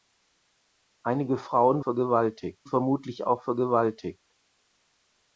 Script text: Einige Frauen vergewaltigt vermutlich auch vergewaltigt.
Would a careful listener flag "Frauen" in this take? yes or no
no